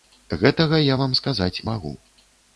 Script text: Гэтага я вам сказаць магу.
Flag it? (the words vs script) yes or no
no